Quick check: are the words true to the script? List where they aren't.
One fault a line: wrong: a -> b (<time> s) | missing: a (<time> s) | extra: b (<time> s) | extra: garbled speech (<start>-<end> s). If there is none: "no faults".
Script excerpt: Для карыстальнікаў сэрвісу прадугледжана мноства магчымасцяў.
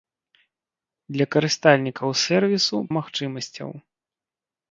missing: прадугледжана мноства (2.8 s)